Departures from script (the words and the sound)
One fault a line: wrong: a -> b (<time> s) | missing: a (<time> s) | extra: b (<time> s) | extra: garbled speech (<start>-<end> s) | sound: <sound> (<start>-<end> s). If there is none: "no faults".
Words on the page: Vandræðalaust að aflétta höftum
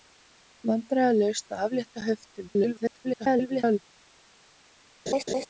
extra: garbled speech (2.5-3.8 s)
sound: laugh (5.1-5.5 s)